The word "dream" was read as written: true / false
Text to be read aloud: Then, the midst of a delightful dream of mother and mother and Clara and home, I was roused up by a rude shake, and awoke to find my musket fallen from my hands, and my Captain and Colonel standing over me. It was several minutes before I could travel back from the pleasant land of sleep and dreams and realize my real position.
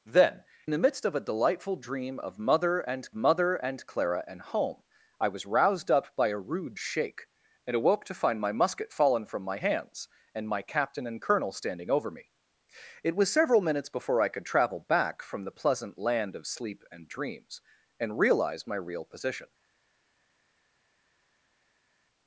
true